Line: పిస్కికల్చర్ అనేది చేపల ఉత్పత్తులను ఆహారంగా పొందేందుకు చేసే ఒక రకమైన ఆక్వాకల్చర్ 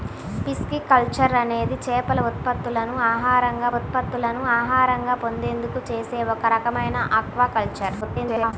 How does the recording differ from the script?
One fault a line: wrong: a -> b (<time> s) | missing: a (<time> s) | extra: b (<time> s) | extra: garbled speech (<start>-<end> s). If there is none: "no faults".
extra: ఉత్పత్తులను ఆహారంగా (3.7 s)
extra: garbled speech (8.0-8.5 s)